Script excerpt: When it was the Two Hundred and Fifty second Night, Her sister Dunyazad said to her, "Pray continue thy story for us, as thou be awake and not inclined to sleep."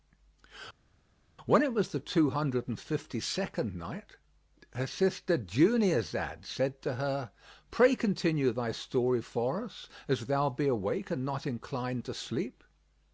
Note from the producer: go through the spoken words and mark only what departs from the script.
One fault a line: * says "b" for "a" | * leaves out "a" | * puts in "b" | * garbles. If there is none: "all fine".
all fine